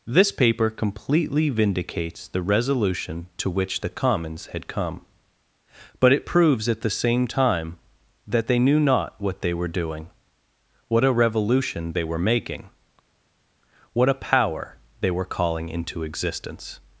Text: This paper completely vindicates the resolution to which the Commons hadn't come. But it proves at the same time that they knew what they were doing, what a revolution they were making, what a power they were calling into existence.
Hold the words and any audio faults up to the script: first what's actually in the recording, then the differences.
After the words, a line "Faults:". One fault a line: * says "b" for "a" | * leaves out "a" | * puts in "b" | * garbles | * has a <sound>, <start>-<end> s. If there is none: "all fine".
This paper completely vindicates the resolution to which the Commons had come. But it proves at the same time that they knew not what they were doing, what a revolution they were making, what a power they were calling into existence.
Faults:
* says "had" for "hadn't"
* puts in "not"